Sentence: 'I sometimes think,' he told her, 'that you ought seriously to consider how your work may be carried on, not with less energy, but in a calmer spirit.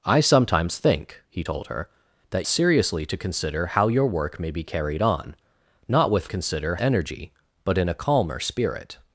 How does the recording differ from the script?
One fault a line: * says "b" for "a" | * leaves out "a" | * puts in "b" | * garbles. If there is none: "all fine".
* leaves out "you ought"
* says "consider" for "less"